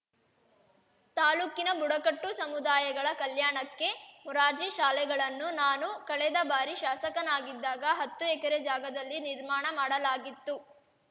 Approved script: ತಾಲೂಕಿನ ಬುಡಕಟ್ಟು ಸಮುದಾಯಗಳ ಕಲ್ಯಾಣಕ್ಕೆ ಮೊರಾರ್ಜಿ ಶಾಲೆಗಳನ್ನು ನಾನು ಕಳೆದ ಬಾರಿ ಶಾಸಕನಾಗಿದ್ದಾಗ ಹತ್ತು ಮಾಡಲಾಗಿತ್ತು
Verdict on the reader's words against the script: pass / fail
fail